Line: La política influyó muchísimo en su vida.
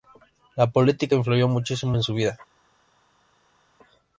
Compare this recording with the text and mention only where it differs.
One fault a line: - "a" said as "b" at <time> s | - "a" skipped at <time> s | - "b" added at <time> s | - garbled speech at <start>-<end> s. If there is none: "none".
none